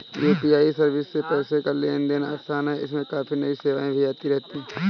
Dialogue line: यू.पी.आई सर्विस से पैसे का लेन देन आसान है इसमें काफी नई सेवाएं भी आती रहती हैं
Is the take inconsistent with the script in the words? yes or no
no